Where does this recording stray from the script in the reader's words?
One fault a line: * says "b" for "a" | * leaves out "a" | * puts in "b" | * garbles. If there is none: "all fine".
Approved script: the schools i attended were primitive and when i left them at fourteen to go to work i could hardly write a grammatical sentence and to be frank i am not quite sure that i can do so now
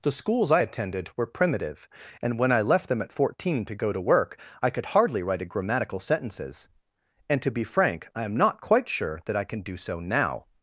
* says "sentences" for "sentence"